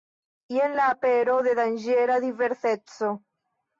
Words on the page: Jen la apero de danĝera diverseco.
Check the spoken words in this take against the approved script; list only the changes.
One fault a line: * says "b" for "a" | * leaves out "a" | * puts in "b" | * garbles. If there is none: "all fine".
all fine